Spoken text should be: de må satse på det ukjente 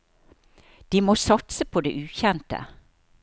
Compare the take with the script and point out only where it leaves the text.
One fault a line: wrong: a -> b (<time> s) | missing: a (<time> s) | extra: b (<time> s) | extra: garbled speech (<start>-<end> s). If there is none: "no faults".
no faults